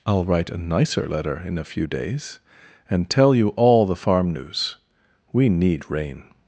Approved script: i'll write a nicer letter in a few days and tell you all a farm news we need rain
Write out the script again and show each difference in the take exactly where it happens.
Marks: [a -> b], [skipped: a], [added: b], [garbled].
i'll write a nicer letter in a few days and tell you all [a -> the] farm news we need rain